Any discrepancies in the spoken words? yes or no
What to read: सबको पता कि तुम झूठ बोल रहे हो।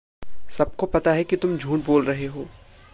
yes